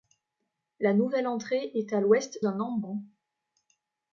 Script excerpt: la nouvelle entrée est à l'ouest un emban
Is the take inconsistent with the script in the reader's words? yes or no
no